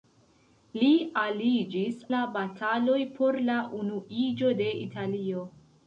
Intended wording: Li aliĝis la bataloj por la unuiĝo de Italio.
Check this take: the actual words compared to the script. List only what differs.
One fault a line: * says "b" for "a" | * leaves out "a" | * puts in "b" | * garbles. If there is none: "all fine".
all fine